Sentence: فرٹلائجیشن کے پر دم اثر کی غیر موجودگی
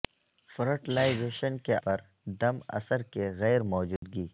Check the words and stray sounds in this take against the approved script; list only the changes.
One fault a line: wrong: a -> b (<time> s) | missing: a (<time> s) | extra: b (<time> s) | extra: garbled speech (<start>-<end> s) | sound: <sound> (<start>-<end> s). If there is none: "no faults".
sound: dropout (4.0-4.0 s)